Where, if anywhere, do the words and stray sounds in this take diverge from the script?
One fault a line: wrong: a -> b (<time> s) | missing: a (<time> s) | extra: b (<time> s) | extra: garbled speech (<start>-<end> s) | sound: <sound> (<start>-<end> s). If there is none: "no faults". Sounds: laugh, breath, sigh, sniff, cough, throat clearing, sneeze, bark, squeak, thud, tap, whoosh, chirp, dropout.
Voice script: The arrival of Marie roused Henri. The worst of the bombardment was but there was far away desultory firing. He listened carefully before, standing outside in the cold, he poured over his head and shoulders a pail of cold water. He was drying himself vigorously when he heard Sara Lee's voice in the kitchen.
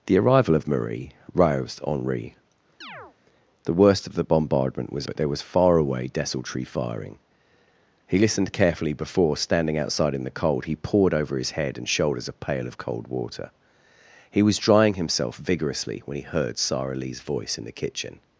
sound: chirp (2.8-3.2 s)